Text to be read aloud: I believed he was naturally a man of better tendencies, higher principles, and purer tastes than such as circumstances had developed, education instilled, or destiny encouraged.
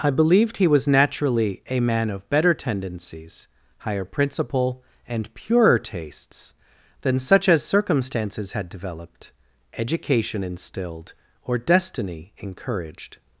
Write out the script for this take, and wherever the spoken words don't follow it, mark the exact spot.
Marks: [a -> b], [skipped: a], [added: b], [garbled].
I believed he was naturally a man of better tendencies, higher [principles, -> principle] and purer tastes than such as circumstances had developed, education instilled, or destiny encouraged.